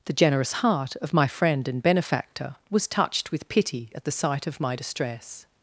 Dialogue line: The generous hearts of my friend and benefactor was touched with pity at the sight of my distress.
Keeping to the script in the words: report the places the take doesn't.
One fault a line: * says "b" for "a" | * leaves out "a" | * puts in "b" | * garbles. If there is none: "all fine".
* says "heart" for "hearts"